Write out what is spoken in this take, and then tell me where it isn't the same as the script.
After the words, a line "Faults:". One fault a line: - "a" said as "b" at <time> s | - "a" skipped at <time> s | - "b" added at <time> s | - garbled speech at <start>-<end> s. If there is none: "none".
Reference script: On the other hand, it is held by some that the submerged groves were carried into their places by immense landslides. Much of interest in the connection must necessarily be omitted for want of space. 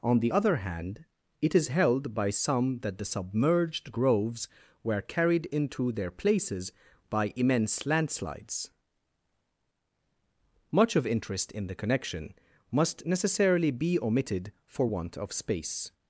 On the other hand, it is held by some that the submerged groves were carried into their places by immense landslides. Much of interest in the connection must necessarily be omitted for want of space.
Faults:
none